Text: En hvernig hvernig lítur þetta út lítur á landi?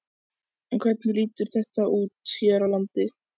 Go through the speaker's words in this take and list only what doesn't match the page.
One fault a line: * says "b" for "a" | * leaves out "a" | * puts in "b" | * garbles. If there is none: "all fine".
* leaves out "hvernig"
* says "hér" for "lítur"